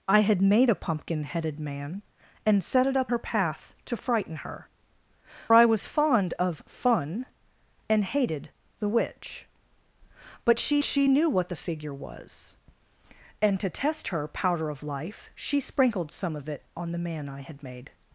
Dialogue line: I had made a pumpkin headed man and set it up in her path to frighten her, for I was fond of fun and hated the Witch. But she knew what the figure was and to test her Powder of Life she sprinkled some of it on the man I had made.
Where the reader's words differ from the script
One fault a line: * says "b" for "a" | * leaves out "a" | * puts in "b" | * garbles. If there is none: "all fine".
* leaves out "in"
* leaves out "for"
* puts in "she"